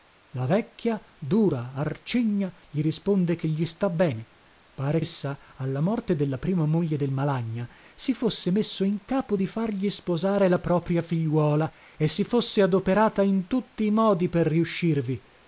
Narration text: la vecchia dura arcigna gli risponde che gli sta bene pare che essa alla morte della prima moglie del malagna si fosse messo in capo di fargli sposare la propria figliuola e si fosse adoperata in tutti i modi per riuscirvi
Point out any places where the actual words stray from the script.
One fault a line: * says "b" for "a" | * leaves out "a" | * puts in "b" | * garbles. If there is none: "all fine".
* leaves out "che"